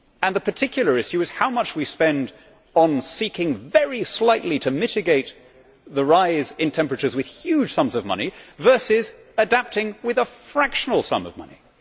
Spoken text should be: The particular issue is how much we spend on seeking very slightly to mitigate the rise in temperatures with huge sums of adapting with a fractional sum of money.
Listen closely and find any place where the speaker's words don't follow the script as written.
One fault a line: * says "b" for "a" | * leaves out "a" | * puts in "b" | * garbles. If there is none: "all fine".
* puts in "money versus"